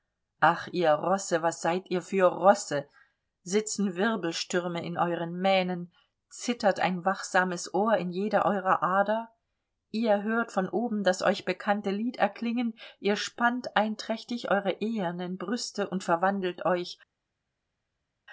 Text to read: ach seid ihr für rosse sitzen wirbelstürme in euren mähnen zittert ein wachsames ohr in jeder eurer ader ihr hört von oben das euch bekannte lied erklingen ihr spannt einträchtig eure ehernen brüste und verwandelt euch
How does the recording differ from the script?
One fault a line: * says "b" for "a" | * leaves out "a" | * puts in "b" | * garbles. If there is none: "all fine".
* puts in "ihr rosse was"